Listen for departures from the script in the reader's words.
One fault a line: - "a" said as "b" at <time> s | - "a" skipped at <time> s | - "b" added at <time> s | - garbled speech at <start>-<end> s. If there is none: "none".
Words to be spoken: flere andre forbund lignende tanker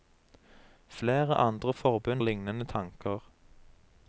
none